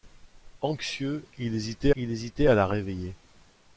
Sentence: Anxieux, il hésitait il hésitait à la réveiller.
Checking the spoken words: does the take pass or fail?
pass